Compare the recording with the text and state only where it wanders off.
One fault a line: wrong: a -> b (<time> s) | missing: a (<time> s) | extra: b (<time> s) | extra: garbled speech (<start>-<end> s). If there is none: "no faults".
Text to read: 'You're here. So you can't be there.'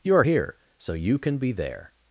wrong: can't -> can (1.2 s)